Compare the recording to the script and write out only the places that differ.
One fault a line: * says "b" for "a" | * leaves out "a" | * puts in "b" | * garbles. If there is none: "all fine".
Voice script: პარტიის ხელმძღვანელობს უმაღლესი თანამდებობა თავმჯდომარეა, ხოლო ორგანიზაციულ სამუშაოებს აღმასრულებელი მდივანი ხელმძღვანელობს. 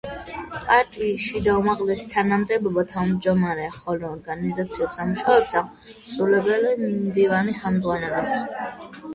* says "შიდა" for "ხელმძღვანელობს"